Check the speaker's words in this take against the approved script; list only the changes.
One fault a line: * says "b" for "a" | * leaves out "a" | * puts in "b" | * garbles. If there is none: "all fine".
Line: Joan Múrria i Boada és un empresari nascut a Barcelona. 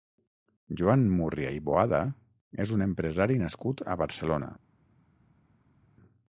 all fine